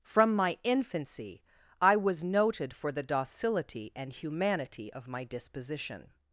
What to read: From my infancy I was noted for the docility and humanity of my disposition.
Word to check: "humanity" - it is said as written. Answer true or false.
true